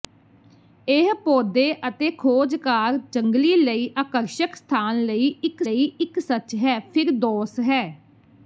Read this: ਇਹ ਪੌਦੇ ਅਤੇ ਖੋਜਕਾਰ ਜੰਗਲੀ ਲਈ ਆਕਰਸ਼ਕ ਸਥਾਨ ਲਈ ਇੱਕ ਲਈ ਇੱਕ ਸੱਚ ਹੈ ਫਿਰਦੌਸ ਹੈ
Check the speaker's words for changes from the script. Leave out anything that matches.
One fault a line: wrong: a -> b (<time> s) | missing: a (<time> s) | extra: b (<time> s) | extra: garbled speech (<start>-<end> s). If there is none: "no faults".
no faults